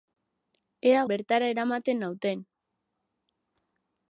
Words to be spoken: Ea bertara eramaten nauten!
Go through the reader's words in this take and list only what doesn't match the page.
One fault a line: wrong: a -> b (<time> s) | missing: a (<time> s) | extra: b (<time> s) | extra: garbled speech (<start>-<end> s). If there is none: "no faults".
no faults